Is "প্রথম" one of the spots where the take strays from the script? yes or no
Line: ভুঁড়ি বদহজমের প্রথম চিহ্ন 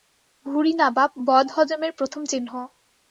no